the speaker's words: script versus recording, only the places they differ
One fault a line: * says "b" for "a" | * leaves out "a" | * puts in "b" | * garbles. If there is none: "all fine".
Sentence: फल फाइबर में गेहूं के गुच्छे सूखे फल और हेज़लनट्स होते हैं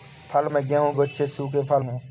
* leaves out "फाइबर"
* leaves out "के"
* leaves out "और हेज़लनट्स होते"